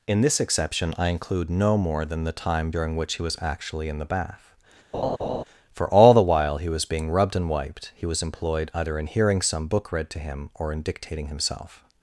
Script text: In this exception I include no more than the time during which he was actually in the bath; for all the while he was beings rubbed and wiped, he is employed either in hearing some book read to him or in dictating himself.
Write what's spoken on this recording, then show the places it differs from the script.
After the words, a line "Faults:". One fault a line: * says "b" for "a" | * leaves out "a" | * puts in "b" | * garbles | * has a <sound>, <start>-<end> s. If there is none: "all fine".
In this exception I include no more than the time during which he was actually in the bath; for all the while he was being rubbed and wiped, he was employed either in hearing some book read to him or in dictating himself.
Faults:
* has a laugh, 4.9-5.4 s
* says "being" for "beings"
* says "was" for "is"